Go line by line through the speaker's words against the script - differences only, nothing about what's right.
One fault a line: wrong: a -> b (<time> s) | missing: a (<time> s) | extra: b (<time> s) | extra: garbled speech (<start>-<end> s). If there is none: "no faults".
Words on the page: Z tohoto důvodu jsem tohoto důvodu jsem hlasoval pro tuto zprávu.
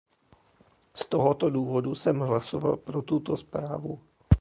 missing: tohoto důvodu jsem (2.2 s)